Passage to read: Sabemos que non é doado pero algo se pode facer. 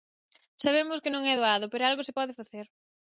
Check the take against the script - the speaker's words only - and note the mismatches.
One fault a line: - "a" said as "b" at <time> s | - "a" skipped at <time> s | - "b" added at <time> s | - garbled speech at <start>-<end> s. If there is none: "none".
none